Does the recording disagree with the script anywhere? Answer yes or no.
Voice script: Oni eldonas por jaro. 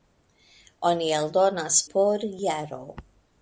no